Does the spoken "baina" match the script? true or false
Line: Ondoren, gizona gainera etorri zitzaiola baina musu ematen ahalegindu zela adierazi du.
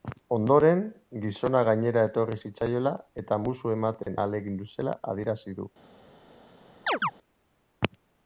false